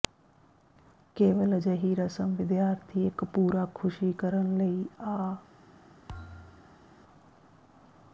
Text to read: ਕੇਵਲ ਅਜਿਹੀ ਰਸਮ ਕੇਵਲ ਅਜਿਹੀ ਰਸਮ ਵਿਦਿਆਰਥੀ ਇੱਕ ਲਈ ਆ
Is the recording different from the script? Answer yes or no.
yes